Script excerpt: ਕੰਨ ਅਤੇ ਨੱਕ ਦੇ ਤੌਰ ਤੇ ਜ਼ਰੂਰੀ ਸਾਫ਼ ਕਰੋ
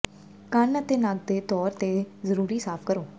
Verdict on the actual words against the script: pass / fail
pass